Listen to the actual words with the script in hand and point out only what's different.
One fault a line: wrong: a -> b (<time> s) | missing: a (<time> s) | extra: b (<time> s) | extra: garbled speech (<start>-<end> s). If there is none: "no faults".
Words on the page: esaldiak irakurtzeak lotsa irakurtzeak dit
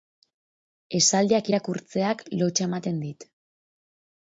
wrong: irakurtzeak -> ematen (2.7 s)